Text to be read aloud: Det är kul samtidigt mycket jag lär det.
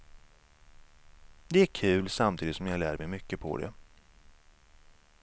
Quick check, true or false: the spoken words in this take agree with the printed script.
false